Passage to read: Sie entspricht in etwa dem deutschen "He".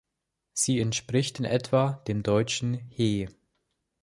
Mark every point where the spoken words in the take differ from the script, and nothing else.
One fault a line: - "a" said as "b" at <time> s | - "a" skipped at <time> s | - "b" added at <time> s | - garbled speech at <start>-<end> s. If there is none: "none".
none